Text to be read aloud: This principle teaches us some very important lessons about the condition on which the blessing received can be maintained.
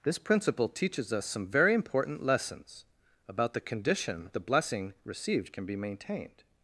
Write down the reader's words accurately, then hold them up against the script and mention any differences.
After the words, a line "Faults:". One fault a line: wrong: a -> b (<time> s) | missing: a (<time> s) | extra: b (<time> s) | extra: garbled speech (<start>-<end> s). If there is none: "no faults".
This principle teaches us some very important lessons about the condition the blessing received can be maintained.
Faults:
missing: on which (4.3 s)